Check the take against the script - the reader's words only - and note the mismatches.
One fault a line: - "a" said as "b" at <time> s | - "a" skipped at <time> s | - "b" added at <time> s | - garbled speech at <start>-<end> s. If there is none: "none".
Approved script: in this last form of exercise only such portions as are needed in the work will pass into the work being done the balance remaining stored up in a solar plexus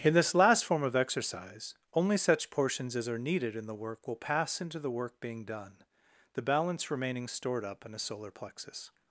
none